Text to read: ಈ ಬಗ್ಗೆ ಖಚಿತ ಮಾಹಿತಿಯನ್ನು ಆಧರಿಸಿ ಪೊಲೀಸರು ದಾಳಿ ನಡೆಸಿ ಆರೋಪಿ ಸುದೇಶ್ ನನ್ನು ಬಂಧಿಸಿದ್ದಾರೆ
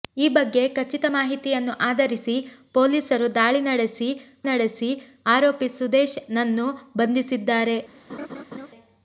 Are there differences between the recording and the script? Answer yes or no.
yes